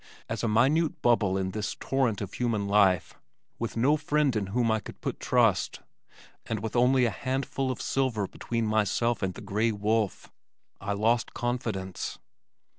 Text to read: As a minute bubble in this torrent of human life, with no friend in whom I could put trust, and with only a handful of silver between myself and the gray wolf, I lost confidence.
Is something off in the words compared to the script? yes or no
no